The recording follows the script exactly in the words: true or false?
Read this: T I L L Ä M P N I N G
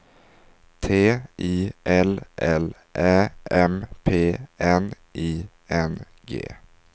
true